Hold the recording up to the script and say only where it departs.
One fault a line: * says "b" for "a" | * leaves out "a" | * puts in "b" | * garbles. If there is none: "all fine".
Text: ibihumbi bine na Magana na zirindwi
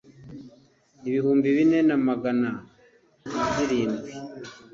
all fine